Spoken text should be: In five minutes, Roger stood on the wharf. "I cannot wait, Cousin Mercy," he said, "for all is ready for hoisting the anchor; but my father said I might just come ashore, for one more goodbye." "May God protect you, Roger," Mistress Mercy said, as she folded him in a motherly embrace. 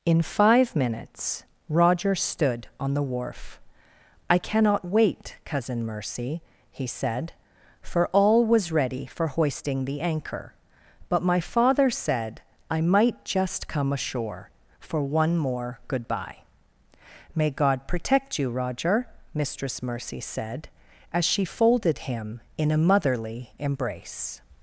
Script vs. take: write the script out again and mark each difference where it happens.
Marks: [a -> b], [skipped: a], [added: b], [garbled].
In five minutes, Roger stood on the wharf. "I cannot wait, Cousin Mercy," he said, "for all [is -> was] ready for hoisting the anchor; but my father said I might just come ashore, for one more goodbye." "May God protect you, Roger," Mistress Mercy said, as she folded him in a motherly embrace.